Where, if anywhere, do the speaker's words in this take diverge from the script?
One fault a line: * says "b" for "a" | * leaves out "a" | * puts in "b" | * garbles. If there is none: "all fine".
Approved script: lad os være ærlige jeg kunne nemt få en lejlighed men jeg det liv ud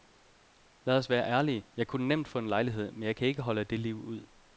* puts in "kan ikke holde"